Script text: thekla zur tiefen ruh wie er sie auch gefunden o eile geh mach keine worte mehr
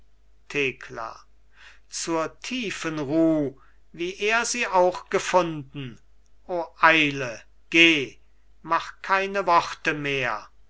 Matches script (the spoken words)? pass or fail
pass